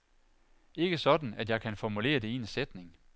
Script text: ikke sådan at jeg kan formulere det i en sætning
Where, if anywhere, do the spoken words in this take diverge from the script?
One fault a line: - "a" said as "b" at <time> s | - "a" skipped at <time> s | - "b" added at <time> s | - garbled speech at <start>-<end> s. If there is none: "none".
none